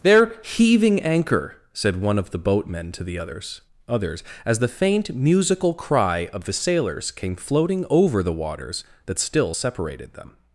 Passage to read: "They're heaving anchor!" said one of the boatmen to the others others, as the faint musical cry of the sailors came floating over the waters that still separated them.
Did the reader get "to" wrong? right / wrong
right